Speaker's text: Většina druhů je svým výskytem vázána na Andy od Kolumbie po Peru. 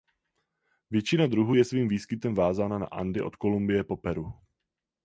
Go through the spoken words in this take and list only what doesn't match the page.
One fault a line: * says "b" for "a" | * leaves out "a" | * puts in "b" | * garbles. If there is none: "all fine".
all fine